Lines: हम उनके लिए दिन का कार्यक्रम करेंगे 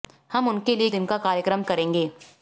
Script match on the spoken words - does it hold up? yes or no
yes